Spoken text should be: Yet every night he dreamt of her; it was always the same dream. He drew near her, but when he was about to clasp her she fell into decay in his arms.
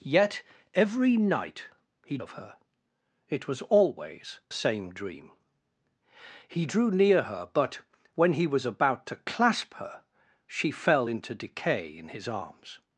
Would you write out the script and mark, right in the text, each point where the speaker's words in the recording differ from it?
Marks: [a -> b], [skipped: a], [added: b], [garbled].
Yet every night he [skipped: dreamt] of her; it was always [skipped: the] same dream. He drew near her, but when he was about to clasp her she fell into decay in his arms.